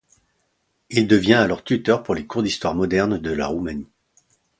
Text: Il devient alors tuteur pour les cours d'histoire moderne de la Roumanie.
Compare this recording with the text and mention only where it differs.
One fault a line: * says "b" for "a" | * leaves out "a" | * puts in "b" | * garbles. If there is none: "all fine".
all fine